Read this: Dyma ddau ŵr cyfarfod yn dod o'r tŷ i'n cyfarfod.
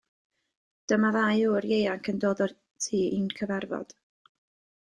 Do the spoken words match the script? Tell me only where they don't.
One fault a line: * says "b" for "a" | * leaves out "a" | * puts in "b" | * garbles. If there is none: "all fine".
* says "ieuanc" for "cyfarfod"